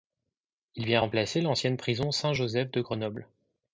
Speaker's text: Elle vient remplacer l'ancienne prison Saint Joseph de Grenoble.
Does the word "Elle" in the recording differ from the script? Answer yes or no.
yes